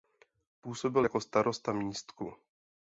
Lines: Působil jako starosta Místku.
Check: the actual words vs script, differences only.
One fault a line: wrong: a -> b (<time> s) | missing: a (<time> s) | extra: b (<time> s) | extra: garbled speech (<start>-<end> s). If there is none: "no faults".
no faults